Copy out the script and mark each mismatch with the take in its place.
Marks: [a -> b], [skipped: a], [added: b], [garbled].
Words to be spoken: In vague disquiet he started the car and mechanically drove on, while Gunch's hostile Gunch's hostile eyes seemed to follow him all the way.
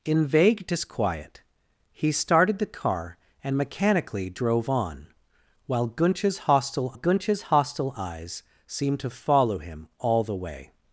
In vague disquiet he started the car and mechanically drove on, while Gunch's hostile Gunch's hostile eyes seemed to follow him all the way.